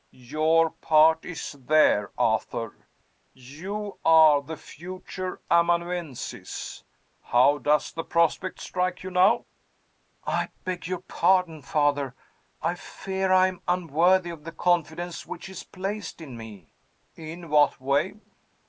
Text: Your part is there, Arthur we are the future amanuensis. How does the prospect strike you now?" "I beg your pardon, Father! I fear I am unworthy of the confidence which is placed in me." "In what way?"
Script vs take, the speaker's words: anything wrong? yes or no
yes